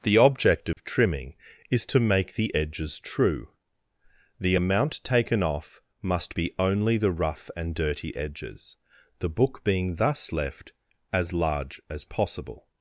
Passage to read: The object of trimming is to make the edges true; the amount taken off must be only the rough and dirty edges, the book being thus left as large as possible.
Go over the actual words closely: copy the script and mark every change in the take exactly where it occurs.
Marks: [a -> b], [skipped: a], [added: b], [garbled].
The object of trimming is to make the edges true; the amount taken off must be only the rough and dirty edges, the book being thus left as large as possible.